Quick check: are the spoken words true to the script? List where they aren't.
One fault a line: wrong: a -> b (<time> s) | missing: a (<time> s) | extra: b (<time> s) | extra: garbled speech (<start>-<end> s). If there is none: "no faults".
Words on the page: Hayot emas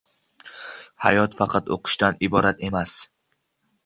extra: faqat o`qishdan iborat (1.4 s)